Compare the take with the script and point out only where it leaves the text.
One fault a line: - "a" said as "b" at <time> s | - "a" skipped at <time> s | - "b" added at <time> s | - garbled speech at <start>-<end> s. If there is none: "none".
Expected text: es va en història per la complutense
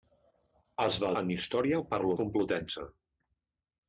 none